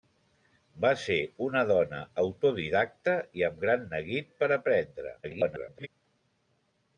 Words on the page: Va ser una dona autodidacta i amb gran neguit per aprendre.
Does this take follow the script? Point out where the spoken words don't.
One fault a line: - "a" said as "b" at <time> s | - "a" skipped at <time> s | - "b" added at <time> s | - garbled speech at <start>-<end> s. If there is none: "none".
- garbled speech at 5.2-5.9 s